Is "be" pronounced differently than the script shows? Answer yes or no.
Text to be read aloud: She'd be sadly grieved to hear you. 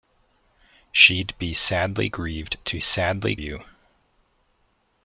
no